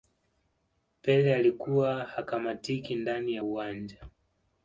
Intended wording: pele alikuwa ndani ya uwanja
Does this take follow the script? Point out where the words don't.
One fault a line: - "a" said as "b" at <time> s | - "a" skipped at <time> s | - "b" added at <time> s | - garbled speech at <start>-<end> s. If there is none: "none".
- "hakamatiki" added at 2.0 s